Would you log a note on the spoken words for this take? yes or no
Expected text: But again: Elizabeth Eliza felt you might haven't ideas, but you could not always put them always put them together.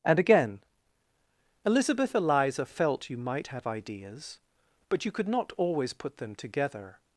yes